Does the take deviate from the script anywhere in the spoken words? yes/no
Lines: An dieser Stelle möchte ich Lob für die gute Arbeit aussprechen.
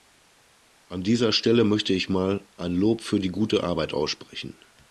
yes